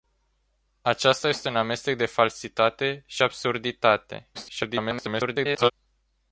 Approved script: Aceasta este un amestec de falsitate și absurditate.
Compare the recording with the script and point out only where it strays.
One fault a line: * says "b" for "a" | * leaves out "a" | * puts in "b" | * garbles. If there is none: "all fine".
* garbles